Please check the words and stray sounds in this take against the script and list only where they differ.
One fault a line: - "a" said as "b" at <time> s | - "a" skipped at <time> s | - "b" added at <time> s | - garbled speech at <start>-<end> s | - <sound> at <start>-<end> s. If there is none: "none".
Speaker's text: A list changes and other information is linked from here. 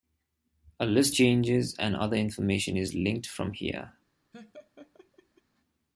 - laugh at 4.3-5.4 s